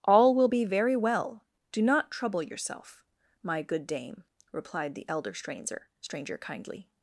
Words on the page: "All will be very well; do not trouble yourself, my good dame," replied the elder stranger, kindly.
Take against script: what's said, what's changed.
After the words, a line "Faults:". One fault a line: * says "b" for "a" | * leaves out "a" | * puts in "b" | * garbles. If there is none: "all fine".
"All will be very well; do not trouble yourself, my good dame," replied the elder stranger stranger, kindly.
Faults:
* puts in "stranger"